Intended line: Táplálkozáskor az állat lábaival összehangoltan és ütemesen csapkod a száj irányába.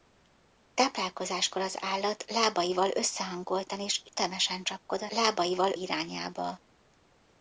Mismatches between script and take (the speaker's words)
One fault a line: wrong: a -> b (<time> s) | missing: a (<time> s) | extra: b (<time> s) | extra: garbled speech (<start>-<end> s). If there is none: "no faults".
wrong: száj -> lábaival (5.1 s)